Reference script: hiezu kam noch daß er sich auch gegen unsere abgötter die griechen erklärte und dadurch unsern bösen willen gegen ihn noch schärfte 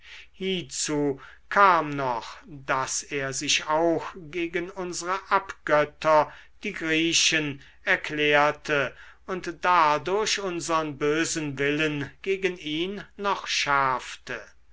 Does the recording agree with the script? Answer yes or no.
yes